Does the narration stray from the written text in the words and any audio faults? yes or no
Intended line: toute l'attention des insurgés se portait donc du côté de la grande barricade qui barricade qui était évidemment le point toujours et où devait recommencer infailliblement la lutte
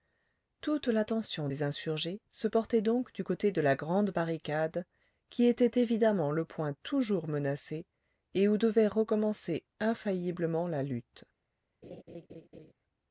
yes